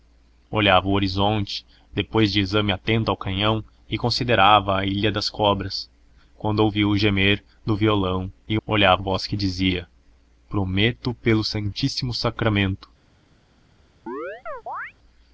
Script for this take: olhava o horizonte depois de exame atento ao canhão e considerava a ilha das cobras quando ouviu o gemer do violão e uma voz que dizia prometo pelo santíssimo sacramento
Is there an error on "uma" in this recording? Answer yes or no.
yes